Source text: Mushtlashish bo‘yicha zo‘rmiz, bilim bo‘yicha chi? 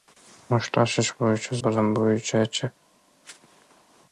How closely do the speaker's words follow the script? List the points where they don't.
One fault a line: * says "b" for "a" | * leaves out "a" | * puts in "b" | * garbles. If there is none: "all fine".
* leaves out "zo‘rmiz"